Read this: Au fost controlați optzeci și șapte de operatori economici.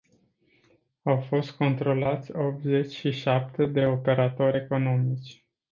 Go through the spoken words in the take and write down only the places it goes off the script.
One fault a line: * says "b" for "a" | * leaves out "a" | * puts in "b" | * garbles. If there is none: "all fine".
all fine